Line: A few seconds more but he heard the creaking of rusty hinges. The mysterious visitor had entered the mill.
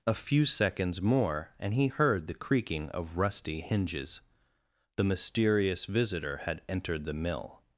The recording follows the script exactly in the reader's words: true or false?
false